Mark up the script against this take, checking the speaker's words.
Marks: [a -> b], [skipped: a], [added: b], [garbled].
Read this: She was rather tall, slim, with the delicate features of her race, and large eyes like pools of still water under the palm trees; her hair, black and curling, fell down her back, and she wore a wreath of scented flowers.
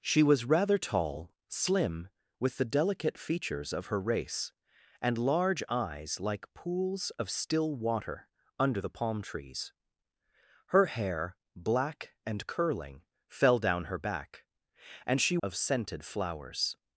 She was rather tall, slim, with the delicate features of her race, and large eyes like pools of still water under the palm trees; her hair, black and curling, fell down her back, and she [skipped: wore a wreath] of scented flowers.